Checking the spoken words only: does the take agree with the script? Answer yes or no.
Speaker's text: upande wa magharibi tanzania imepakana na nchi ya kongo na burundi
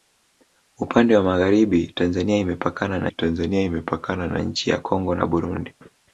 no